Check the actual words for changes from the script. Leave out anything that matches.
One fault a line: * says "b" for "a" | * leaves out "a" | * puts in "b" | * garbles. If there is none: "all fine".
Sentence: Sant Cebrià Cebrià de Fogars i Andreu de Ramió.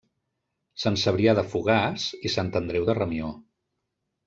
* leaves out "Cebrià"
* puts in "Sant"